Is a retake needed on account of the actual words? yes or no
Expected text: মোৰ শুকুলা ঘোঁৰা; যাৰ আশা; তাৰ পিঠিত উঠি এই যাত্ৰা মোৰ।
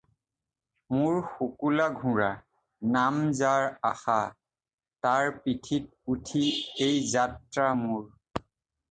yes